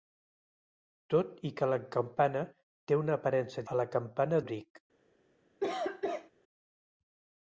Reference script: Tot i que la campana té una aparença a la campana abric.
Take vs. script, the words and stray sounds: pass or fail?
fail